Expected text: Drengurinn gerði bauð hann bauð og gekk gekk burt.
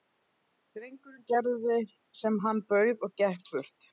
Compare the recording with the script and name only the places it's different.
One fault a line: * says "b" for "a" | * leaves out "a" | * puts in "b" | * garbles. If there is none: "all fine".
* says "sem" for "bauð"
* leaves out "gekk"